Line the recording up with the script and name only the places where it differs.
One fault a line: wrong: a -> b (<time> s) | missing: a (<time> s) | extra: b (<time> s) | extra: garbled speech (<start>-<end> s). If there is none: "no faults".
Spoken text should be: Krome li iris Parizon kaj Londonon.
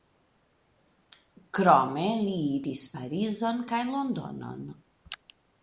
no faults